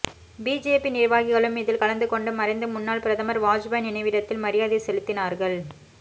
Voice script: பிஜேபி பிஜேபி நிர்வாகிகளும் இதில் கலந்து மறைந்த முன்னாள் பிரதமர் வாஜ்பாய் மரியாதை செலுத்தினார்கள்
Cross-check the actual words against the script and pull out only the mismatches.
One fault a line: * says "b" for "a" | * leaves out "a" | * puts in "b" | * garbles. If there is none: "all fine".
* leaves out "பிஜேபி"
* puts in "கொண்டு"
* puts in "நினைவிடத்தில்"